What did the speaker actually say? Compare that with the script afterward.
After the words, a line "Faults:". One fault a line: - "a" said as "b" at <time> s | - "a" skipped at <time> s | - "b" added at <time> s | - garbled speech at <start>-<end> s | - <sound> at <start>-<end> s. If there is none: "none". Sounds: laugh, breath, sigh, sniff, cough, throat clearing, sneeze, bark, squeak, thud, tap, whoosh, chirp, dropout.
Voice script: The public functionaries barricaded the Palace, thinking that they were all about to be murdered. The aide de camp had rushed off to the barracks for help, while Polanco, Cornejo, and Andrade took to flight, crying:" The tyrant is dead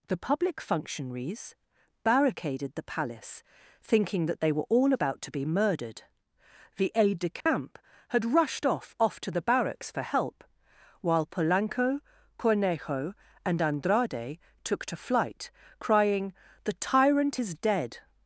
The public functionaries barricaded the Palace, thinking that they were all about to be murdered. The aide de camp had rushed off off to the barracks for help, while Polanco, Cornejo, and Andrade took to flight, crying:" The tyrant is dead
Faults:
- dropout at 7.4-7.5 s
- "off" added at 9.0 s